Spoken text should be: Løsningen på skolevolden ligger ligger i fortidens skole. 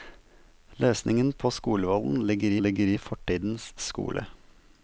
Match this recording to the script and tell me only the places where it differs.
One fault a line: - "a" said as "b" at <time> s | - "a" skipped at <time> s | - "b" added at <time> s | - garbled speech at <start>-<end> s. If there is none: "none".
none